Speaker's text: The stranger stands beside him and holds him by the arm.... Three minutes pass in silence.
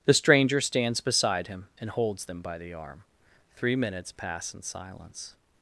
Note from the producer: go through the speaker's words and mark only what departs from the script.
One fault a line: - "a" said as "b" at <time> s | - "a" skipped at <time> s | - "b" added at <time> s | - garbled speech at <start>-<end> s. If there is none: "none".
- "him" said as "them" at 2.2 s